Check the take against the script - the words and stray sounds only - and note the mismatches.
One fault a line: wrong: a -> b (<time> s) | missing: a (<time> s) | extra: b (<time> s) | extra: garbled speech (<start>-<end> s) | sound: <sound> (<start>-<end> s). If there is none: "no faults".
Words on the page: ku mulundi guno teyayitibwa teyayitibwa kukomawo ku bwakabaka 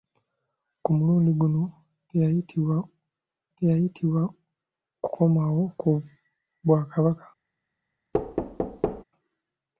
sound: thud (8.1-9.0 s)